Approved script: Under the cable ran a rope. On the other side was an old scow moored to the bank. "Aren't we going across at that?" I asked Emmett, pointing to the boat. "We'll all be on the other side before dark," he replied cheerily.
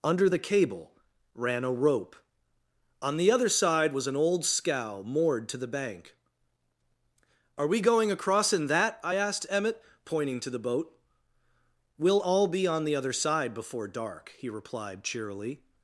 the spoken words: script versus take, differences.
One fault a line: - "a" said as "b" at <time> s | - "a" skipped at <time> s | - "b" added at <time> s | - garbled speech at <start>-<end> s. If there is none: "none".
- "Aren't" said as "Are" at 7.6 s
- "at" said as "in" at 8.5 s